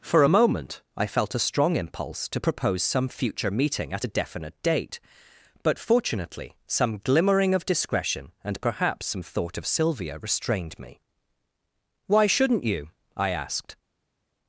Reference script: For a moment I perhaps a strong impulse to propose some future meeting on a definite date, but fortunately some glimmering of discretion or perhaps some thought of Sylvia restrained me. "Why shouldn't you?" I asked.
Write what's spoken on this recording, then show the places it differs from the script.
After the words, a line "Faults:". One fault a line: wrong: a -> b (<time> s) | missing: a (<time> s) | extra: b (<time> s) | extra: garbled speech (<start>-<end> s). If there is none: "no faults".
For a moment I felt a strong impulse to propose some future meeting at a definite date, but fortunately some glimmering of discretion and perhaps some thought of Sylvia restrained me. "Why shouldn't you?" I asked.
Faults:
wrong: perhaps -> felt (1.1 s)
wrong: on -> at (3.9 s)
wrong: or -> and (8.4 s)